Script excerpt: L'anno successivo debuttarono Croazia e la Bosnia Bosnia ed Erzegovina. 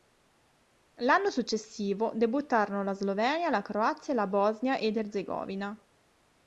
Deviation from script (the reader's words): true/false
true